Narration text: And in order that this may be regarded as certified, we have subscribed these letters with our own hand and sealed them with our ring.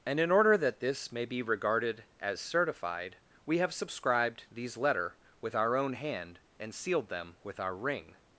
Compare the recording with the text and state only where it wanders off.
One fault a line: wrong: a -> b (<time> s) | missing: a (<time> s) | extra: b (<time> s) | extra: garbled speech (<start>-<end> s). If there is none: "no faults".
wrong: letters -> letter (4.8 s)